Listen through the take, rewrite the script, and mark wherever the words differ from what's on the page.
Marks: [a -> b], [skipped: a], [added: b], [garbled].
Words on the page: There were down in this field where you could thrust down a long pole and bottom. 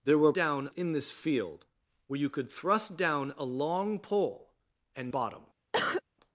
There were down in this field where you could thrust down a long pole and bottom.